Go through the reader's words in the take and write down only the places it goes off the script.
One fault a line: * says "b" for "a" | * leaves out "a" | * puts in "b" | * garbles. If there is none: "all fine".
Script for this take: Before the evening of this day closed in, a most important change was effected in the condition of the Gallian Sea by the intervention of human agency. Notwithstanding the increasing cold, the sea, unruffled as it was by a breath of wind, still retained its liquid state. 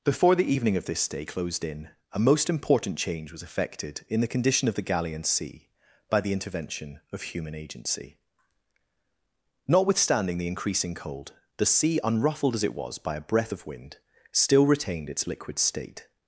all fine